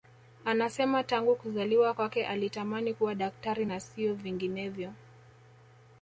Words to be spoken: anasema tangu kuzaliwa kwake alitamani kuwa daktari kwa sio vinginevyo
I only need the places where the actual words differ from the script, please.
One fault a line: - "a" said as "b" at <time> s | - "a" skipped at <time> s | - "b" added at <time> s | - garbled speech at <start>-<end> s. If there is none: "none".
- "kwa" said as "na" at 3.6 s